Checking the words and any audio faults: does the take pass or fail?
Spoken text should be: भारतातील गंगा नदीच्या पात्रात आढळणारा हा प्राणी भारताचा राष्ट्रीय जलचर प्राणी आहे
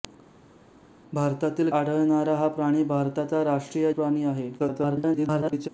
fail